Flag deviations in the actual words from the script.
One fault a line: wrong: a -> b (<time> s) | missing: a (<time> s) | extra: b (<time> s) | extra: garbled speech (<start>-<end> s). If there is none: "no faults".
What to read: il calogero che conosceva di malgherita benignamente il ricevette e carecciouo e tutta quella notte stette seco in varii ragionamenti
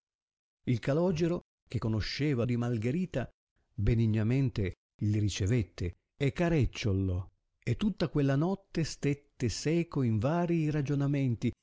no faults